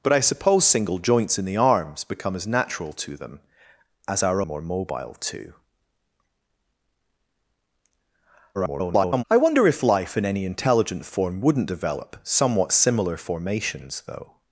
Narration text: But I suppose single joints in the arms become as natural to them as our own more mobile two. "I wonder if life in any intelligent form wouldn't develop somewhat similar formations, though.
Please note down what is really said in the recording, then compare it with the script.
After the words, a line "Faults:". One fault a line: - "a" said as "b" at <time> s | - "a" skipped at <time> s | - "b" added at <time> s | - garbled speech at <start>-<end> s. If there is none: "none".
But I suppose single joints in the arms become as natural to them as our more mobile two. [garbled] "I wonder if life in any intelligent form wouldn't develop somewhat similar formations, though.
Faults:
- "own" skipped at 4.4 s
- garbled speech at 8.5-9.2 s